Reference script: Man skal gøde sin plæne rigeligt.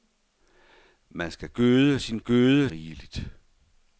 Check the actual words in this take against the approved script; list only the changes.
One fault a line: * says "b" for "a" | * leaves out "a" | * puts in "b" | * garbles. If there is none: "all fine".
* says "gøde" for "plæne"